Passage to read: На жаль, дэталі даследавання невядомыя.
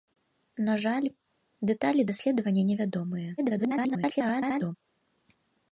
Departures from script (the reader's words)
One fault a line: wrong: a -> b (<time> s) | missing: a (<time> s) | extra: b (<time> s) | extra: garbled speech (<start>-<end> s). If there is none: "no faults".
extra: garbled speech (3.4-4.8 s)